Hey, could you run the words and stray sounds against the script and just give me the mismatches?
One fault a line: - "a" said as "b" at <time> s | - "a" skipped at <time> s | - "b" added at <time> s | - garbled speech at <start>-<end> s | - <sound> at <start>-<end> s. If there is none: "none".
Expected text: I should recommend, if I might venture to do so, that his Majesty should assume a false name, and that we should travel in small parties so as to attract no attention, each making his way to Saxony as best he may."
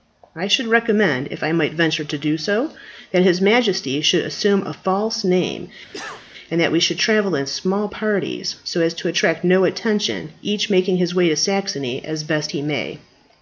- cough at 5.9-6.3 s